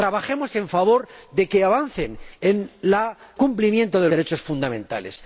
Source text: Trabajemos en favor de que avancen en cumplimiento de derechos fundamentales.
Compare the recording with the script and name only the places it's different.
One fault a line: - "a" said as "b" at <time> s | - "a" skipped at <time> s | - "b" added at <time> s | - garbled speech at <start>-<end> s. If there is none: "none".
none